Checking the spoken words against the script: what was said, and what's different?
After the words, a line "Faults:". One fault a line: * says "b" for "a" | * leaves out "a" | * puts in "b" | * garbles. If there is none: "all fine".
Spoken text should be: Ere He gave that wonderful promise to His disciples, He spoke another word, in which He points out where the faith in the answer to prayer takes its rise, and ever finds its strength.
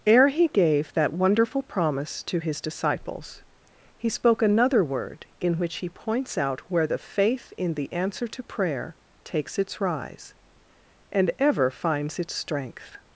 Ere He gave that wonderful promise to His disciples, He spoke another word, in which He points out where the faith in the answer to prayer takes its rise, and ever finds its strength.
Faults:
all fine